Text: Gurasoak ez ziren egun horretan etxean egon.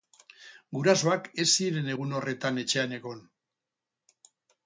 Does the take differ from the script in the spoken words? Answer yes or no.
no